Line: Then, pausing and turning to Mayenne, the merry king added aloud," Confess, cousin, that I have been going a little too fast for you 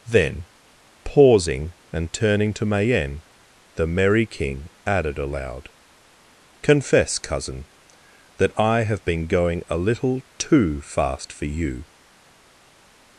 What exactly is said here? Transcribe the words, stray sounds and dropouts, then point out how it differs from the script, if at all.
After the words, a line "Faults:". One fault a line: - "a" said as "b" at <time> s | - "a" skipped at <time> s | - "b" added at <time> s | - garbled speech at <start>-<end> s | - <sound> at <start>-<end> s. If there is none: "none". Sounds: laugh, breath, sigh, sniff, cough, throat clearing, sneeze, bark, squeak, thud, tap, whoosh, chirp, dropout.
Then, pausing and turning to Mayenne, the merry king added aloud," Confess, cousin, that I have been going a little too fast for you
Faults:
none